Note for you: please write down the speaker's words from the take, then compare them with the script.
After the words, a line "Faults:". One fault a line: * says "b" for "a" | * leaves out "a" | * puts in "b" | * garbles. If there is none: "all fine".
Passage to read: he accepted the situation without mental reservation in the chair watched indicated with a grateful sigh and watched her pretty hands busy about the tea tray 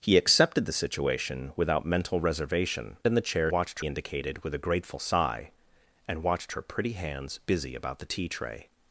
he accepted the situation without mental reservation in the chair watched indicated with a grateful sigh and watched her pretty hands busy about the tea tray
Faults:
all fine